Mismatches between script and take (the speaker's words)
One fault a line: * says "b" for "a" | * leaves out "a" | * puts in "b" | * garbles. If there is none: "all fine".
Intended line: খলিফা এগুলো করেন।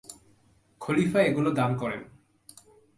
* puts in "দান"